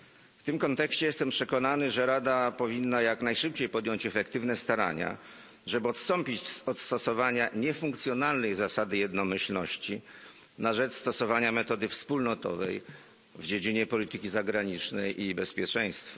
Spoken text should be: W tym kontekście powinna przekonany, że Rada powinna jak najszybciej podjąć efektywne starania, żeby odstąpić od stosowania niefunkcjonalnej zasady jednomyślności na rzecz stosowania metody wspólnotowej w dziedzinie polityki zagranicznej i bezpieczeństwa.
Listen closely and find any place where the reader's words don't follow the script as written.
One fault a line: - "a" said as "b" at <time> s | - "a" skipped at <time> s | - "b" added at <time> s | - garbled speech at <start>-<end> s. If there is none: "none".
- "powinna" said as "jestem" at 1.1 s